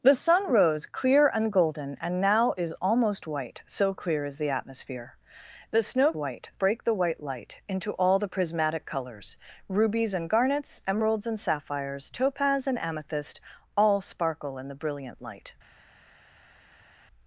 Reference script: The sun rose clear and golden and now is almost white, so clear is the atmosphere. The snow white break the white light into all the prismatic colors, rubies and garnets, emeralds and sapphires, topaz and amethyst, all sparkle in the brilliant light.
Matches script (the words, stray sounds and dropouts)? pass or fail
pass